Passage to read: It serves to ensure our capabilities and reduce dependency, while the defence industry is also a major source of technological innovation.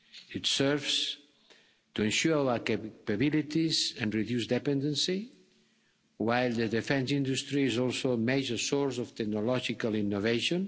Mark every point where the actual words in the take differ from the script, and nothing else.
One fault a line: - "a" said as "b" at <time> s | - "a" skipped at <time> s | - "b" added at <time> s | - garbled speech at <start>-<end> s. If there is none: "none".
none